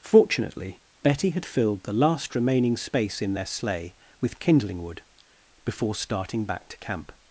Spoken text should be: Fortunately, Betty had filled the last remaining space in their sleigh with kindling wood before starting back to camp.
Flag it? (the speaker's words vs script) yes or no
no